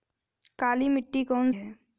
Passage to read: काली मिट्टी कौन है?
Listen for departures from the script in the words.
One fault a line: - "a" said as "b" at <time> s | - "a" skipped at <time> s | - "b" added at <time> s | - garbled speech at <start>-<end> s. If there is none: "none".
none